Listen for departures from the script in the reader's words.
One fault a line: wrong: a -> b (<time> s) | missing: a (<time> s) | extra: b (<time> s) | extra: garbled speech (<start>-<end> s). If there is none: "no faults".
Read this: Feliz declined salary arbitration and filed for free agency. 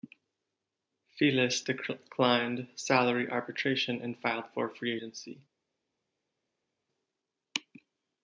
no faults